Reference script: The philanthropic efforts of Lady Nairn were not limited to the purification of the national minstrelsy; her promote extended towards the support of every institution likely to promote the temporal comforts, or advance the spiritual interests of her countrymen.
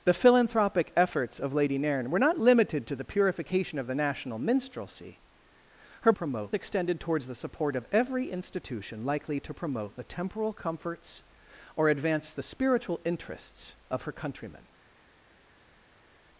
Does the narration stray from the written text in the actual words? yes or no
no